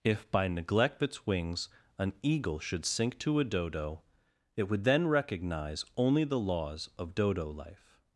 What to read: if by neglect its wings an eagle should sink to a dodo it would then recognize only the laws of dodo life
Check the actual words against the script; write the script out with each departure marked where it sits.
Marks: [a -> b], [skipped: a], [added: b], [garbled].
if by neglect its wings an eagle should sink to a dodo it would then recognize only the laws of dodo life